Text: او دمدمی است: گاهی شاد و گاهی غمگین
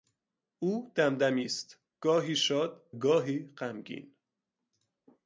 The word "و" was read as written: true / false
false